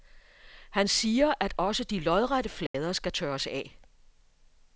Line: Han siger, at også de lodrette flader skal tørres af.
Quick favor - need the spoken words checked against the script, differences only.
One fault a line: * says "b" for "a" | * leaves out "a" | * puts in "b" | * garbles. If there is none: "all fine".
all fine